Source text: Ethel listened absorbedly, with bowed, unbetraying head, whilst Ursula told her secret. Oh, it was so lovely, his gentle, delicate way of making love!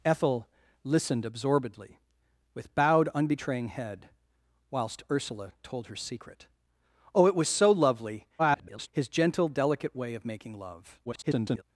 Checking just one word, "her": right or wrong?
right